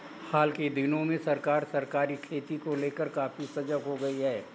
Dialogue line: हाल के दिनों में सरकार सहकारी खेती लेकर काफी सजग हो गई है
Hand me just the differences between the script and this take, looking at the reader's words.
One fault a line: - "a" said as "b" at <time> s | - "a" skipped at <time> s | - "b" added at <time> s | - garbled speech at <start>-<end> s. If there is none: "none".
- "को" added at 2.6 s